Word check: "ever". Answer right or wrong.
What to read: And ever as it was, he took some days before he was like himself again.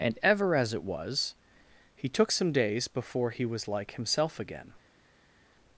right